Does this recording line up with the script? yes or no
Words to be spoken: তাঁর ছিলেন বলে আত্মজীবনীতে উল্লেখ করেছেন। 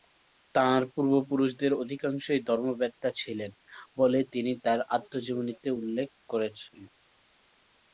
no